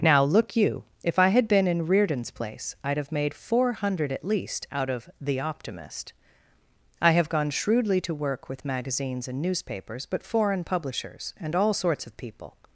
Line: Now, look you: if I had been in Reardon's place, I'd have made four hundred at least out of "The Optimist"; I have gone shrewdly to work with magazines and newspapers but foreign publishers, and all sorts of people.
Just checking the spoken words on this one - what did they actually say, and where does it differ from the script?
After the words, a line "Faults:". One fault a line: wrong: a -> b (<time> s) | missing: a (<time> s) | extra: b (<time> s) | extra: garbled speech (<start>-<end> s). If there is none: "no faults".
Now, look you: if I had been in Reardon's place, I'd have made four hundred at least out of "The Optimist"; I have gone shrewdly to work with magazines and newspapers but foreign publishers, and all sorts of people.
Faults:
no faults